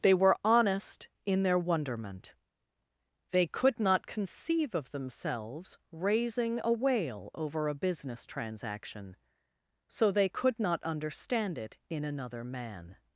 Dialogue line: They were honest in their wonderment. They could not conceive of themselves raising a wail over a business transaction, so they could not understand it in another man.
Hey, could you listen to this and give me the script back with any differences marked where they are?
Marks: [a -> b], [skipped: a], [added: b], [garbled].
They were honest in their wonderment. They could not conceive of themselves raising a wail over a business transaction, so they could not understand it in another man.